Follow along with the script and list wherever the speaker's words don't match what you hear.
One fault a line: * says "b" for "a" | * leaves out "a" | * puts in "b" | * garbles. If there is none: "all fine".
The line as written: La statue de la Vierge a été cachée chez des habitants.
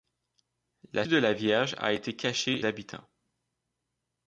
* leaves out "statue"
* leaves out "chez des"